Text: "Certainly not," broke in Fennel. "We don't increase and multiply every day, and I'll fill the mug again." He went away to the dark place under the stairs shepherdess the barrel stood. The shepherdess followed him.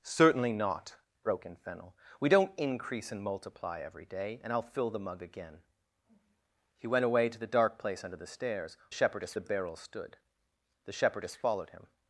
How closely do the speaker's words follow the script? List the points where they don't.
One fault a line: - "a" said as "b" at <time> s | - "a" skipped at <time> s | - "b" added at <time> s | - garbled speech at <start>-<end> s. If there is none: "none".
none